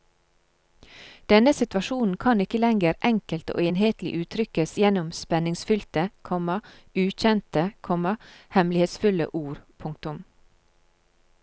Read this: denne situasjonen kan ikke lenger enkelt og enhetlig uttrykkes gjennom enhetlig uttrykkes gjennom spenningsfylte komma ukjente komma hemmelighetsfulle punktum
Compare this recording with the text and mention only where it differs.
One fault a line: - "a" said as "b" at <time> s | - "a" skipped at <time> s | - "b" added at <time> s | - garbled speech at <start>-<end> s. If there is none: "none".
- "enhetlig uttrykkes gjennom" skipped at 5.1 s
- "ord" added at 9.4 s